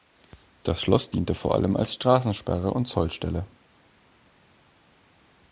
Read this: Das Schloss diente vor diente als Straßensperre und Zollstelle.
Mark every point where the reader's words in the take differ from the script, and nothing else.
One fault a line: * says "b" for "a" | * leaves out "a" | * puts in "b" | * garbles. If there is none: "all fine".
* says "allem" for "diente"